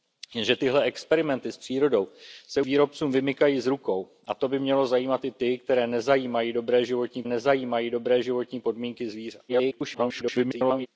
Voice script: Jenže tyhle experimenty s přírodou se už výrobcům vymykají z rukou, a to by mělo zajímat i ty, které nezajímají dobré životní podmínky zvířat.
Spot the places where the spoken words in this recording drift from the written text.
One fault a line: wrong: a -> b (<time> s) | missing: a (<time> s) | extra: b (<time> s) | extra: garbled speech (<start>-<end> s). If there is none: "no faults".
missing: už (2.6 s)
extra: nezajímají dobré životní (7.3 s)
extra: garbled speech (9.5-10.9 s)